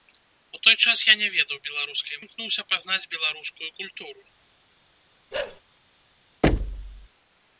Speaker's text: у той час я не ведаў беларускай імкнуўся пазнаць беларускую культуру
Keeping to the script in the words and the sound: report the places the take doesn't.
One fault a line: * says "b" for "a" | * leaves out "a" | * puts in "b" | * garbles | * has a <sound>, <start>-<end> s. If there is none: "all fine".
* has a bark, 5.3-5.6 s
* has a thud, 6.4-7.1 s